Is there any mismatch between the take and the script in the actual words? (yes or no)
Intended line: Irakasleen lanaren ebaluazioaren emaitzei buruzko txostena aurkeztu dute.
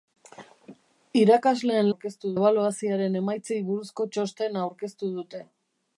yes